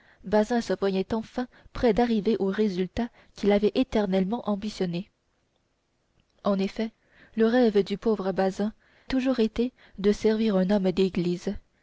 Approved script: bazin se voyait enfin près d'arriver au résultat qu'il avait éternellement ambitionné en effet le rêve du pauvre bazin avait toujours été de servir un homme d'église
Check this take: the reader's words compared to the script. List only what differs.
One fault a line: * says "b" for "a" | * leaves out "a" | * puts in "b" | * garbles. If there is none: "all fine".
* leaves out "avait"